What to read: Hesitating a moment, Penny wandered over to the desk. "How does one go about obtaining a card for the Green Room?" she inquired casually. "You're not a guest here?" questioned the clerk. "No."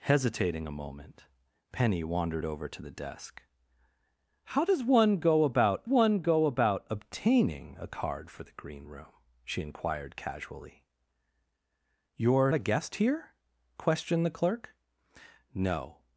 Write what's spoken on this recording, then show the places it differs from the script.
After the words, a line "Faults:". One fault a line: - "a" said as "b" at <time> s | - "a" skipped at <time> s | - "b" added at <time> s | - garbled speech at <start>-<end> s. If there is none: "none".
Hesitating a moment, Penny wandered over to the desk. "How does one go about one go about obtaining a card for the Green Room?" she inquired casually. "You're a guest here?" questioned the clerk. "No."
Faults:
- "one go about" added at 5.8 s
- "not" skipped at 12.5 s